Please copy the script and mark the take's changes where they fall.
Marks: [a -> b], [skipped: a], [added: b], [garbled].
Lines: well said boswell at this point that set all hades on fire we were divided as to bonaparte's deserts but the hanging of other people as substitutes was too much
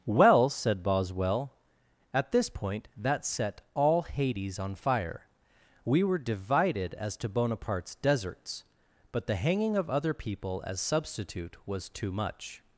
well said boswell at this point that set all hades on fire we were divided as to bonaparte's deserts but the hanging of other people as [substitutes -> substitute] was too much